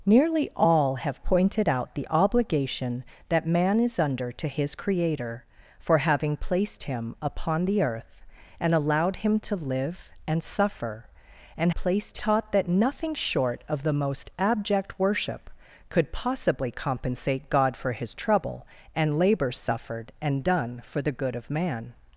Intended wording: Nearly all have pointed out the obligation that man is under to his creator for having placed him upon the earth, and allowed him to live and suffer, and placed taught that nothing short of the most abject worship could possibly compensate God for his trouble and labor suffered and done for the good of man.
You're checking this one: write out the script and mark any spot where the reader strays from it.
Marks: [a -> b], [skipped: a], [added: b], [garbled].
Nearly all have pointed out the obligation that man is under to his creator for having placed him upon the earth, and allowed him to live and suffer, and placed taught that nothing short of the most abject worship could possibly compensate God for his trouble and labor suffered and done for the good of man.